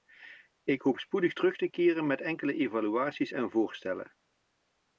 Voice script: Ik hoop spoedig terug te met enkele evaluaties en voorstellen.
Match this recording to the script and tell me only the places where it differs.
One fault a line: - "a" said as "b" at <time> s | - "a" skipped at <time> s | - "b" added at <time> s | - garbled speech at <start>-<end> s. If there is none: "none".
- "keren" added at 1.7 s